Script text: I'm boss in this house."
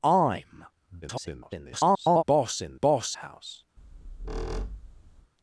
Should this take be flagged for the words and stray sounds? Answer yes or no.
yes